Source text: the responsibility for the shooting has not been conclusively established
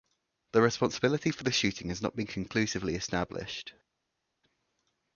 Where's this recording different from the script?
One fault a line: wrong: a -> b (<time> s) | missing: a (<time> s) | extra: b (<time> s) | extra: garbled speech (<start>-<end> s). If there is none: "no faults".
no faults